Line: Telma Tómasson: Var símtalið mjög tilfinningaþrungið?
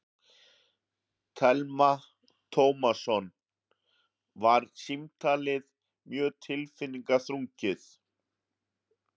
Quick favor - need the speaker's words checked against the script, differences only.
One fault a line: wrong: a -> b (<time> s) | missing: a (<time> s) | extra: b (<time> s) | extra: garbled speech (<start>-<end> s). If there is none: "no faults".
no faults